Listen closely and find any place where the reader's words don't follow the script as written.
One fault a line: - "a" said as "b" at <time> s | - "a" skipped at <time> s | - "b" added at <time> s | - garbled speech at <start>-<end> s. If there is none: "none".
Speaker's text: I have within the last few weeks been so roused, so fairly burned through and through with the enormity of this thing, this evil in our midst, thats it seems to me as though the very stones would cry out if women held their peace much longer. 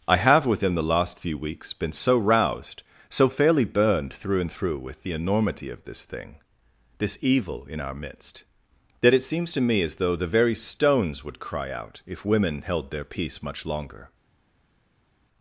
- "thats" said as "that" at 9.0 s